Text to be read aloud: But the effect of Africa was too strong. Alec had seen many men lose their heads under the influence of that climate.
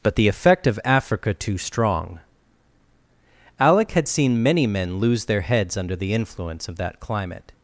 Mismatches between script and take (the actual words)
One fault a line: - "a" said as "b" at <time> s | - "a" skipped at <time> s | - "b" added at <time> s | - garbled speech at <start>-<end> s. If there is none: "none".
- "was" skipped at 1.3 s